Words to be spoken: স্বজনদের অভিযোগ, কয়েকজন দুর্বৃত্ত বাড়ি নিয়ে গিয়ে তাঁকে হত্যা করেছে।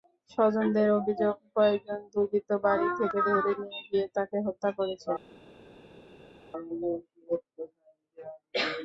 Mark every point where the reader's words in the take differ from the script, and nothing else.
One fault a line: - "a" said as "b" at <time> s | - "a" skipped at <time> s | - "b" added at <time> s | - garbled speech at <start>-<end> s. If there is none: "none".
- "থেকে ধরে" added at 3.0 s